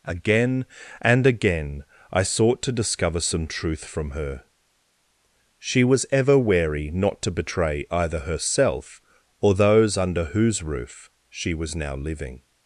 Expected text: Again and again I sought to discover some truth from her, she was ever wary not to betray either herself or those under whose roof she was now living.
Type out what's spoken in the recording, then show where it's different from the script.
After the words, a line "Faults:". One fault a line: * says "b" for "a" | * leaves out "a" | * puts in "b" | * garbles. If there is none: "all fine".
Again and again I sought to discover some truth from her, she was ever wary not to betray either herself or those under whose roof she was now living.
Faults:
all fine